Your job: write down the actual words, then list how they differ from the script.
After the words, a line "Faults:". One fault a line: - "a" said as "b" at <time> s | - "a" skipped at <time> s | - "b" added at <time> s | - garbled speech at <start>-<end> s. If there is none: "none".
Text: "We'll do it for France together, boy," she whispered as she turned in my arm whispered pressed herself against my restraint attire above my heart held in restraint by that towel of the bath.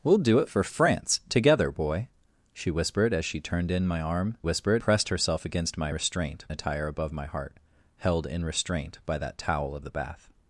"We'll do it for France together, boy," she whispered as she turned in my arm whispered pressed herself against my restraint attire above my heart held in restraint by that towel of the bath.
Faults:
none